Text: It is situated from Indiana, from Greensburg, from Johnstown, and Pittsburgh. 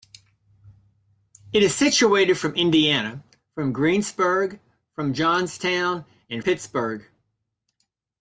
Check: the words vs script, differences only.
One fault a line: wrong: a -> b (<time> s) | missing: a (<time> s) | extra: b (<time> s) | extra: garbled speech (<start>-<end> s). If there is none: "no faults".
no faults